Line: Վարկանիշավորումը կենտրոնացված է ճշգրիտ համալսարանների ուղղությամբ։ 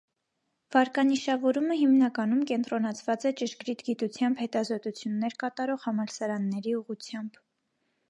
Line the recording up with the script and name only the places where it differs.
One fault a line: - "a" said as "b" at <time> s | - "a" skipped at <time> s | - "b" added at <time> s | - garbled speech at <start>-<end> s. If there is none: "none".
- "հիմնականում" added at 1.8 s
- "գիտությամբ հետազոտություններ կատարող" added at 3.9 s